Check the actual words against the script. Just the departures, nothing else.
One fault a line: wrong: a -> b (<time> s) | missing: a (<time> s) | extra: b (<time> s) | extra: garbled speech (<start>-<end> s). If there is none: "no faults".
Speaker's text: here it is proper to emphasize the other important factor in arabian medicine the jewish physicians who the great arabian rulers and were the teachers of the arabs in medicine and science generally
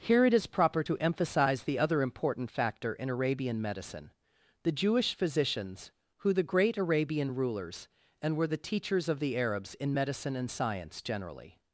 no faults